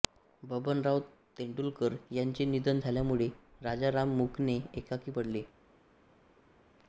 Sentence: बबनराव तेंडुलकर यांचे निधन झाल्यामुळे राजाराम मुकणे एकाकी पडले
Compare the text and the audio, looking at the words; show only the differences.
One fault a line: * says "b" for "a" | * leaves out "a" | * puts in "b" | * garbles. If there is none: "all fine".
all fine